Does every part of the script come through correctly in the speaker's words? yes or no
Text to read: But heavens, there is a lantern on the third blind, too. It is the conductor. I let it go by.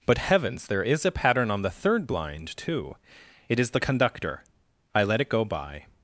no